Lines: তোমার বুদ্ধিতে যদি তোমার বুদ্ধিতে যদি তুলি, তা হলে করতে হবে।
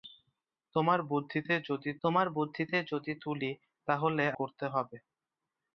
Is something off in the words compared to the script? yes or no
no